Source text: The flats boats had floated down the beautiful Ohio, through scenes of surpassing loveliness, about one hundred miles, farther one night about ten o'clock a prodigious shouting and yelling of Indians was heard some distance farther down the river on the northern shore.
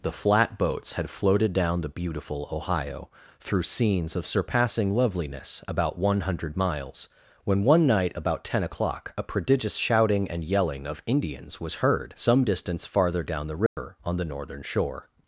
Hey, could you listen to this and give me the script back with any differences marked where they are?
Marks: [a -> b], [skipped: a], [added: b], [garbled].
The [flats -> flat] boats had floated down the beautiful Ohio, through scenes of surpassing loveliness, about one hundred miles, [farther -> when] one night about ten o'clock a prodigious shouting and yelling of Indians was heard some distance farther down the river on the northern shore.